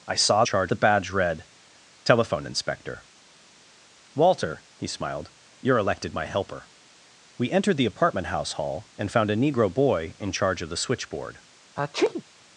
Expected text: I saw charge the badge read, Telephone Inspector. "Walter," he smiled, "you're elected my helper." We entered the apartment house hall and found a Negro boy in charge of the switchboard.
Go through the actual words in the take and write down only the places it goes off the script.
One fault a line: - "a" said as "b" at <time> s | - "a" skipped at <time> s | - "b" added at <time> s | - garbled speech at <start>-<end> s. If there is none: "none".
none